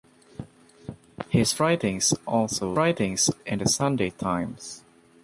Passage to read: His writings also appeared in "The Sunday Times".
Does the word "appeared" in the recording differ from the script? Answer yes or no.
yes